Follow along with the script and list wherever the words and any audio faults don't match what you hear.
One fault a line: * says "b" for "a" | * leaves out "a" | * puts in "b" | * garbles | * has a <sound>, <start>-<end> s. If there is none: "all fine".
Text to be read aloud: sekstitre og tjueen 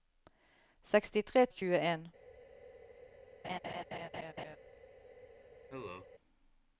* has a laugh, 3.4-4.6 s
* has a cough, 5.7-6.1 s